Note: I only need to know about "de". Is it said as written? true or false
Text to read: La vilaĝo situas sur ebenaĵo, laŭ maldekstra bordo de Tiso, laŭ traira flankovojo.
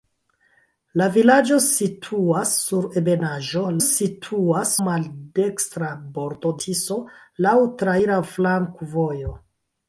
false